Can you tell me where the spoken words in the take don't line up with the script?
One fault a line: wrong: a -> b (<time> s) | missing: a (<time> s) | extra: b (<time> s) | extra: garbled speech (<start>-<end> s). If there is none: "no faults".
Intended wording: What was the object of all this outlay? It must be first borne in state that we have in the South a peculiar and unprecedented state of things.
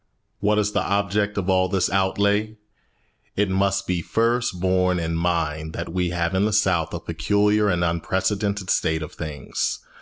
wrong: was -> is (0.6 s)
wrong: state -> mind (5.2 s)